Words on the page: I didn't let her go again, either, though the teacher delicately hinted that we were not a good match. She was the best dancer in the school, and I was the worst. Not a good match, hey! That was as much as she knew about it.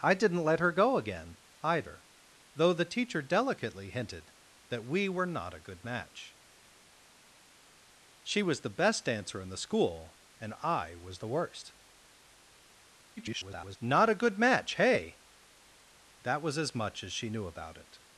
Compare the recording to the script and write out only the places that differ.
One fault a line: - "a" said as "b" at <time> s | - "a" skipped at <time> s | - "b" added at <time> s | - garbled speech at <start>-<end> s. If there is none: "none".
- garbled speech at 13.2-13.8 s